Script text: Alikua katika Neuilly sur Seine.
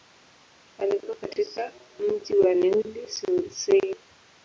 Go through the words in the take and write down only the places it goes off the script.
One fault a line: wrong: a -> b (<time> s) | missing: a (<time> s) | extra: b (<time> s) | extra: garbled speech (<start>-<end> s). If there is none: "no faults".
extra: mji wa (2.0 s)